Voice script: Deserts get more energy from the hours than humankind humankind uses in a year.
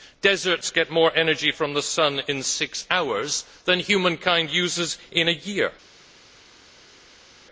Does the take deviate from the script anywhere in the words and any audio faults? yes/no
yes